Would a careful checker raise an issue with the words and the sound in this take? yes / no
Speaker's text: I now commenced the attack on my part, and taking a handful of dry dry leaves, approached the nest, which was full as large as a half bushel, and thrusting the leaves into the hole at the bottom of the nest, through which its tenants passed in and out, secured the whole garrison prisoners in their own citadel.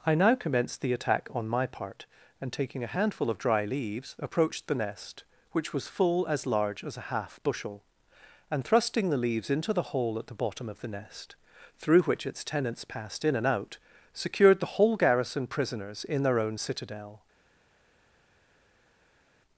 yes